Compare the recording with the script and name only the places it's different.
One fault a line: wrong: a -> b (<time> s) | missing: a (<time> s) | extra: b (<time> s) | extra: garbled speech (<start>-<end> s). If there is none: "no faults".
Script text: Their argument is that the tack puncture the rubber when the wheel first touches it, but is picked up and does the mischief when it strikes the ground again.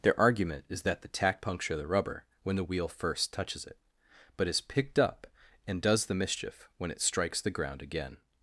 no faults